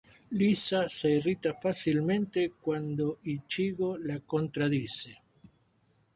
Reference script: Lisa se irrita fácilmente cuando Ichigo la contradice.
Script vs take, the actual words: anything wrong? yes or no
no